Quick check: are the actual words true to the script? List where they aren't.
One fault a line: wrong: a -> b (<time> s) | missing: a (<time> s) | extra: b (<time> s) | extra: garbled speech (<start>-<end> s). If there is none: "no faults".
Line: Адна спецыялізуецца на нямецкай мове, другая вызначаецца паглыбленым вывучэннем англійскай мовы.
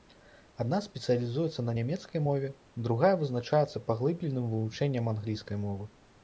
no faults